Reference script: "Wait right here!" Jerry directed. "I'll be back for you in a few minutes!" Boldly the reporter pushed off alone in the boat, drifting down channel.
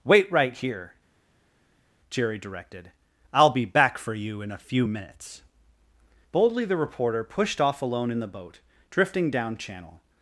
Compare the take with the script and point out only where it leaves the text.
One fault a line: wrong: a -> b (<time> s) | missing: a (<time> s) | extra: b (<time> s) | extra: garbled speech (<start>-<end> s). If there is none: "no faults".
no faults